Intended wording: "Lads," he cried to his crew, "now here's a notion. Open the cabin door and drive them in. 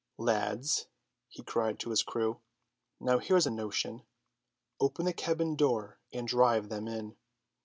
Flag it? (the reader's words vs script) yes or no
no